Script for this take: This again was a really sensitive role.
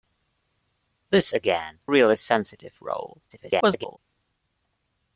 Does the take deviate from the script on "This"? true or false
false